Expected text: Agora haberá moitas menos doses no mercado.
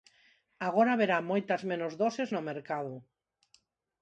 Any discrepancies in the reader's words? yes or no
no